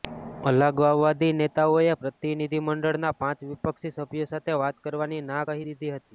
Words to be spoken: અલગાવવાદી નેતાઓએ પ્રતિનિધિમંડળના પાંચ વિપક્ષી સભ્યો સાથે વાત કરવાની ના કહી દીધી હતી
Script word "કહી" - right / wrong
right